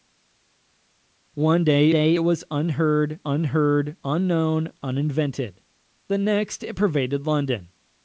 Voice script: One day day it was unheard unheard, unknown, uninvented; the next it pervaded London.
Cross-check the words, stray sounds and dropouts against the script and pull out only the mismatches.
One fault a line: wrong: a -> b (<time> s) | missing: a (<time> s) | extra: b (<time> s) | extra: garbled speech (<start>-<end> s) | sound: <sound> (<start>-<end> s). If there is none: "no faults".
no faults